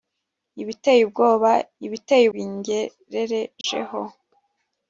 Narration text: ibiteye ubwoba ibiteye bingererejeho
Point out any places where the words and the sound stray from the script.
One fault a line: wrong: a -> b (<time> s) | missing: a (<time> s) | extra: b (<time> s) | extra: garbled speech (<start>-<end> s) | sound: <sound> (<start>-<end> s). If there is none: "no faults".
sound: dropout (3.6-3.6 s)